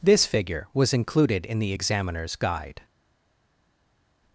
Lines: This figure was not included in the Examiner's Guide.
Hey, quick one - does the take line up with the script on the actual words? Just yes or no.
no